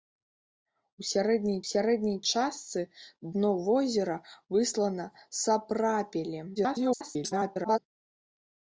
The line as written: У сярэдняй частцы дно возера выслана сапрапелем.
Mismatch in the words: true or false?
true